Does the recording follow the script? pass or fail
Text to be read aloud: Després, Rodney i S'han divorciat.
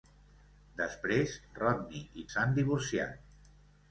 pass